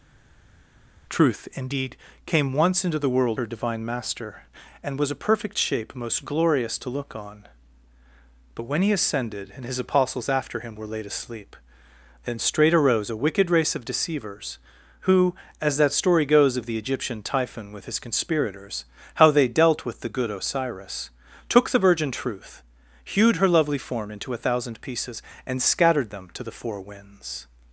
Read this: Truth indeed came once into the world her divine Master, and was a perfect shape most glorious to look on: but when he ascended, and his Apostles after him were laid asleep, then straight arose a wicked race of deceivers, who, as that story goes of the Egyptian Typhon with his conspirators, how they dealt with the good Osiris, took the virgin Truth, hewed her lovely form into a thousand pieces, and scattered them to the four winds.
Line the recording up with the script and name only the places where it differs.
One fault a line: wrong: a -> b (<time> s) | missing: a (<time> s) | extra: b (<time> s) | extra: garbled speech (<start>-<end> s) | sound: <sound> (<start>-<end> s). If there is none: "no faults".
no faults